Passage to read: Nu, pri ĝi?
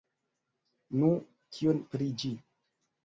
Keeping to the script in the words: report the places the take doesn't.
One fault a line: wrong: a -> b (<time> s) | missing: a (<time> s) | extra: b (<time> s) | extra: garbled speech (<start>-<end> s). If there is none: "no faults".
extra: kion (1.6 s)